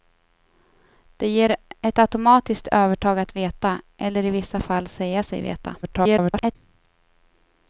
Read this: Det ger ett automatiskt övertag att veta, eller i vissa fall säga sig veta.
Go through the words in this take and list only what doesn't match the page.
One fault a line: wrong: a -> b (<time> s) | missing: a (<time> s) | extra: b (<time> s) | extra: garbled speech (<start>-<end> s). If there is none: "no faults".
extra: garbled speech (5.8-6.6 s)